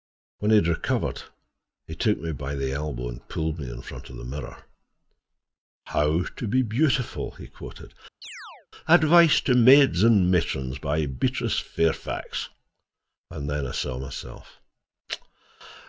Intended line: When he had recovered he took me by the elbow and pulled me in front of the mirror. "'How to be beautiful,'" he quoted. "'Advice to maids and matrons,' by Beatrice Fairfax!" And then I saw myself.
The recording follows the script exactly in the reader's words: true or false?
true